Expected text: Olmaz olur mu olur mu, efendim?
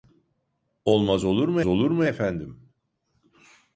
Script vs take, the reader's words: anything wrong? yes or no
no